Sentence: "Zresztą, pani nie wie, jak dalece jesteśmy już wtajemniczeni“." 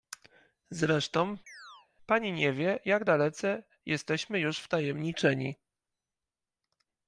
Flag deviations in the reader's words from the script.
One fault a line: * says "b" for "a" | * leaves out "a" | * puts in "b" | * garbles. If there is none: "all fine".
all fine